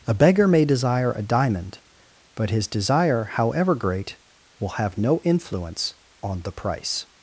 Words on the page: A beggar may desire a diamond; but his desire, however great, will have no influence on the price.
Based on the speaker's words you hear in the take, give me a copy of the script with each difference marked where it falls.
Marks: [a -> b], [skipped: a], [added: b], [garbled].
A beggar may desire a diamond; but his desire, however great, will have no influence on the price.